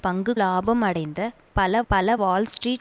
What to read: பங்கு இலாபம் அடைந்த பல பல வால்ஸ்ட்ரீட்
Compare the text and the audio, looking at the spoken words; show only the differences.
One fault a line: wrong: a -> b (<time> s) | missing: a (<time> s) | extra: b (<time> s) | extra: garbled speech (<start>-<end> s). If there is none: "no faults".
no faults